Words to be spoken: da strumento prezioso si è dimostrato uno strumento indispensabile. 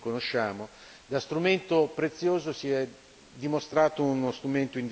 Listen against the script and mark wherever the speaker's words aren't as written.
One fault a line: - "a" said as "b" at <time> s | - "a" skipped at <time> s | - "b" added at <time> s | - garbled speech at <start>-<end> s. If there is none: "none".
none